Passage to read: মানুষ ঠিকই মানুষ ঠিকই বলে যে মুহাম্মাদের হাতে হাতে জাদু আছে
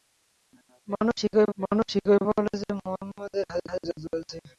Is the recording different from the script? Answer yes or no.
no